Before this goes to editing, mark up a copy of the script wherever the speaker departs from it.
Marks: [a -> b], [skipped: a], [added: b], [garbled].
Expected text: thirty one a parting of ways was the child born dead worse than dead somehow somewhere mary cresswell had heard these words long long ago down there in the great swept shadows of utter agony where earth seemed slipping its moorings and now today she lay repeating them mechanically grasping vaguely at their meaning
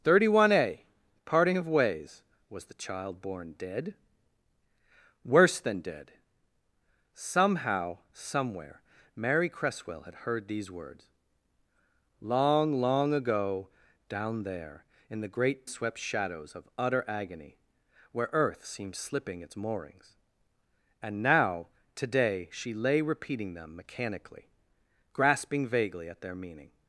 thirty one a parting of ways was the child born dead worse than dead somehow somewhere mary cresswell had heard these words long long ago down there in the great swept shadows of utter agony where earth seemed slipping its moorings and now today she lay repeating them mechanically grasping vaguely at their meaning